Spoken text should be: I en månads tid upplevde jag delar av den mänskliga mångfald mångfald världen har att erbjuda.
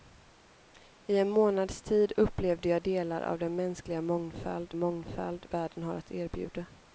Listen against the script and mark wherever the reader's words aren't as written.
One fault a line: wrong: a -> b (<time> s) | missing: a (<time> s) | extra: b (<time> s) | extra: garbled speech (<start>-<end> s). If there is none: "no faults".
no faults